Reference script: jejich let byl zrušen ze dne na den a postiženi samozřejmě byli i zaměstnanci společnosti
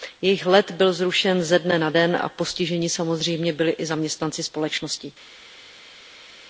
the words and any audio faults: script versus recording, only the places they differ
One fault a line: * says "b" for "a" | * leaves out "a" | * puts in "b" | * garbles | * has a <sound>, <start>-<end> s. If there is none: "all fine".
all fine